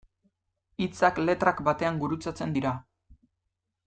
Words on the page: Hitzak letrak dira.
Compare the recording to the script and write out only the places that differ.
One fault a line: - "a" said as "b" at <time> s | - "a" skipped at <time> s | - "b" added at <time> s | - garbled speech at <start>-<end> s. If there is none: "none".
- "batean gurutzatzen" added at 1.7 s